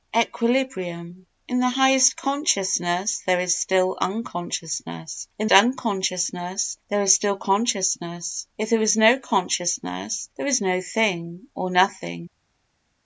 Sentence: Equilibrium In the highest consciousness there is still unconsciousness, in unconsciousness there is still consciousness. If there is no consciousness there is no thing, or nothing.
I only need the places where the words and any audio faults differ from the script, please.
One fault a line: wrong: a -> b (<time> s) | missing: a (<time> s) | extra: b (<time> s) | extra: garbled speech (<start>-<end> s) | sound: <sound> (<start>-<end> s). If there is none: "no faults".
no faults